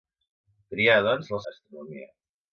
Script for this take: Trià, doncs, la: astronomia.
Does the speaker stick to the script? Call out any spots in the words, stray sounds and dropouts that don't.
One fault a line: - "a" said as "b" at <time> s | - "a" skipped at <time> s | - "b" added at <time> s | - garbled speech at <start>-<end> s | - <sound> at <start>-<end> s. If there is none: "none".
none